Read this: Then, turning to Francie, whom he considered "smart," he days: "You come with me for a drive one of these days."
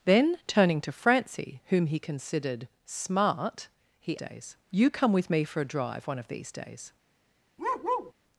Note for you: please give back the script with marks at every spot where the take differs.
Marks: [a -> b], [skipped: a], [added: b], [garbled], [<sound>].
Then, turning to Francie, whom he considered "smart," he days: "You come with me for a drive one of these days." [bark]